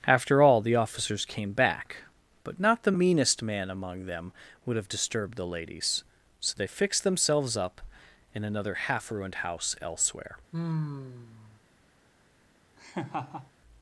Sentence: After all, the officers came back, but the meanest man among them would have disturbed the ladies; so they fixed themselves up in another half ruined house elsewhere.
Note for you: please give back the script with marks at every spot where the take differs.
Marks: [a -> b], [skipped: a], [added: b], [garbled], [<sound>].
After all, the officers came back, but [added: not] the meanest man among them would have disturbed the ladies; so they fixed themselves up in another half ruined house elsewhere. [sigh] [laugh]